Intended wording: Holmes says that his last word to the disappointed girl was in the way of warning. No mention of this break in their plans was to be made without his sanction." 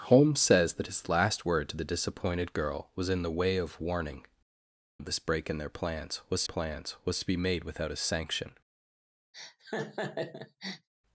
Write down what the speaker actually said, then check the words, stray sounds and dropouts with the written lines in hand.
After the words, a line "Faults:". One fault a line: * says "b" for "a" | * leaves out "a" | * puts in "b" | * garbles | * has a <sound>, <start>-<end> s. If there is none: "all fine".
Holmes says that his last word to the disappointed girl was in the way of warning. Of this break in their plans was plans was to be made without his sanction."
Faults:
* leaves out "No mention"
* puts in "plans was"
* has a laugh, 9.3-10.9 s